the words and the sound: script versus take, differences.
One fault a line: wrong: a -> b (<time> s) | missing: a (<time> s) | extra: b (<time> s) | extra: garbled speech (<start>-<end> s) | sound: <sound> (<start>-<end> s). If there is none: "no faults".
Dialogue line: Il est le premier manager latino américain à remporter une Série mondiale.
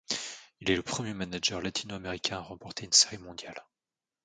no faults